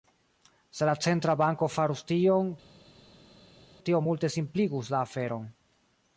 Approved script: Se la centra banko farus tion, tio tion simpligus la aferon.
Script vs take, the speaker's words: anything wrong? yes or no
yes